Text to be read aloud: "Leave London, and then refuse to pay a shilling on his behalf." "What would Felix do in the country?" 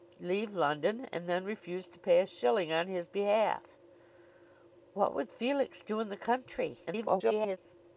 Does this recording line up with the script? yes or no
no